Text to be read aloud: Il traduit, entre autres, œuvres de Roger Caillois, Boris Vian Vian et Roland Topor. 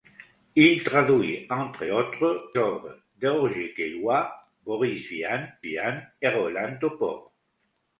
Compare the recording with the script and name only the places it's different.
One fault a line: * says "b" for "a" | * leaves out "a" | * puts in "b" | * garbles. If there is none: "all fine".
all fine